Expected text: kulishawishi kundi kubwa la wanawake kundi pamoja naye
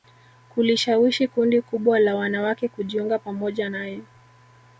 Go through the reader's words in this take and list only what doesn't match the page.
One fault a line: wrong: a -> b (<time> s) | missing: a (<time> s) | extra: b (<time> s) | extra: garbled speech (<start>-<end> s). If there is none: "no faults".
wrong: kundi -> kujiunga (2.7 s)